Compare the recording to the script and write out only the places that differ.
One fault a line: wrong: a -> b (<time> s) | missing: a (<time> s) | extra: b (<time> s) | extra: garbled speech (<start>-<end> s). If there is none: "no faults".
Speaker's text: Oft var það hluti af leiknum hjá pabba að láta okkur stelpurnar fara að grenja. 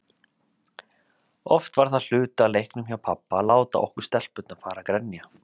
no faults